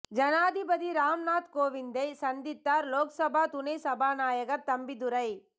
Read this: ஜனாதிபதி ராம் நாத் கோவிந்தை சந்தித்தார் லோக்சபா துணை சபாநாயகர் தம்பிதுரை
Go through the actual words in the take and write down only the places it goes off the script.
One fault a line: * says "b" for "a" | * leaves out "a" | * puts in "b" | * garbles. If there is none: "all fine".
all fine